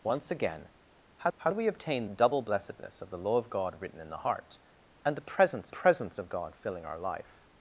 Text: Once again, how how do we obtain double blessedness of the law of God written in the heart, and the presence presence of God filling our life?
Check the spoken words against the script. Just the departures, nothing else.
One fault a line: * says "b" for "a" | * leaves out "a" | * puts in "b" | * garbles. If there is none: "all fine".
all fine